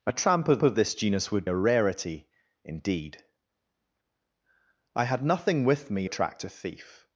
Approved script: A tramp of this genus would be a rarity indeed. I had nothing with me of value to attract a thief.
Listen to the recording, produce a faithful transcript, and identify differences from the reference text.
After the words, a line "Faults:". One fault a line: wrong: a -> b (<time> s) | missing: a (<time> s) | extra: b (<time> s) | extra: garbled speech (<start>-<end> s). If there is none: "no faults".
A tramp of of this genus would a rarity indeed. I had nothing with me attract a thief.
Faults:
extra: of (0.6 s)
missing: be (1.5 s)
missing: of value to (6.1 s)